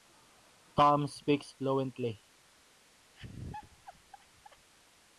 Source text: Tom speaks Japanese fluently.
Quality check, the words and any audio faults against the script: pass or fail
fail